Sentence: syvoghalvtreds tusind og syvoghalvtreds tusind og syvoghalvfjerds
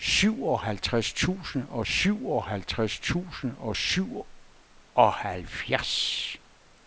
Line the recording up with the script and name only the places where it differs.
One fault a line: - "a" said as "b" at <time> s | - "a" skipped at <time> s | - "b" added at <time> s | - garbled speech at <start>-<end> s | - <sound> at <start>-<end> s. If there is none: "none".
none